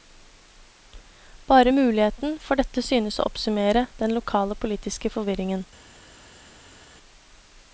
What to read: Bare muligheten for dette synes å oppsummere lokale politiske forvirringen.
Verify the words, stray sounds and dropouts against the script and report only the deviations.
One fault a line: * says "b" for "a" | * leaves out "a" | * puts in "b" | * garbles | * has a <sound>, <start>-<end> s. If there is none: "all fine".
* puts in "den"